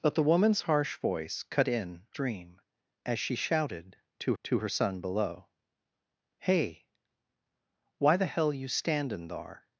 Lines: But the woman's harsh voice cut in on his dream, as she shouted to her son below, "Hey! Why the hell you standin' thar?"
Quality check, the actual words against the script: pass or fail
fail